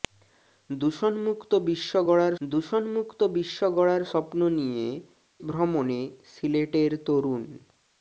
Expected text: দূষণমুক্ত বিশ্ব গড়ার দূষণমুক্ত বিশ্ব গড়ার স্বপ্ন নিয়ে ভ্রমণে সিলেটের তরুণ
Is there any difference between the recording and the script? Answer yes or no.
no